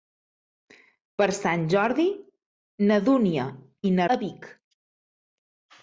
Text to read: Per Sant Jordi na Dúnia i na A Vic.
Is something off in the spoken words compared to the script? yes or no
no